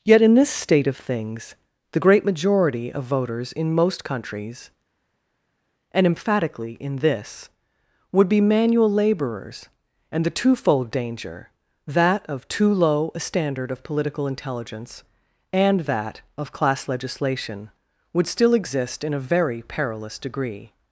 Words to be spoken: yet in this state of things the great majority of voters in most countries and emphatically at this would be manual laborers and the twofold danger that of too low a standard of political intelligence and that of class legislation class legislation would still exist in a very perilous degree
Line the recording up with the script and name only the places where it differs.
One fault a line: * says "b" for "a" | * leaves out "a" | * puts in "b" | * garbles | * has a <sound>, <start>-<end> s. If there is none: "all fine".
* says "in" for "at"
* leaves out "class legislation"